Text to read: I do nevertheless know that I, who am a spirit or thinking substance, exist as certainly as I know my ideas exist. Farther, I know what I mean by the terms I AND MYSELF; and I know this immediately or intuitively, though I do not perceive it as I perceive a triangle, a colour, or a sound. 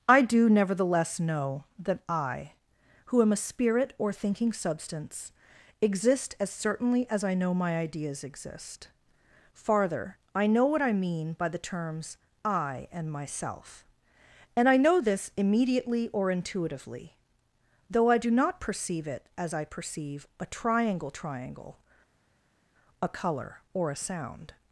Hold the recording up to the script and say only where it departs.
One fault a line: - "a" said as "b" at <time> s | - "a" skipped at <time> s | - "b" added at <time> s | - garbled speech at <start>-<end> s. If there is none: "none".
- "triangle" added at 21.1 s